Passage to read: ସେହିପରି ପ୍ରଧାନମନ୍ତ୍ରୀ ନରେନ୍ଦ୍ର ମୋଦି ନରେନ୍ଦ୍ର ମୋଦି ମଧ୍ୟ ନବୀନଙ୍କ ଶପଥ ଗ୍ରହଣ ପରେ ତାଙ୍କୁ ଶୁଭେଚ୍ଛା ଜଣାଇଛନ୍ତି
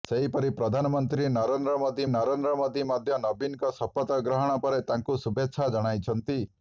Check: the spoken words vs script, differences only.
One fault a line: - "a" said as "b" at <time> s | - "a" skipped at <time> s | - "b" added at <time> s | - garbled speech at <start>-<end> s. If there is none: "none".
none